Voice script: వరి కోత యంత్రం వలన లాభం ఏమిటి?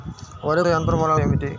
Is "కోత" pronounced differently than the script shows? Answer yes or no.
yes